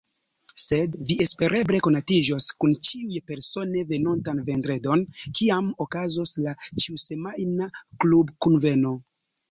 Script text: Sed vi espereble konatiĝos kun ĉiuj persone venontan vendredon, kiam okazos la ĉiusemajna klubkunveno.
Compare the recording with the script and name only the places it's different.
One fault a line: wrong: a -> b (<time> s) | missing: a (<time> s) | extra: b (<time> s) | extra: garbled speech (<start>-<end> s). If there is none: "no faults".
no faults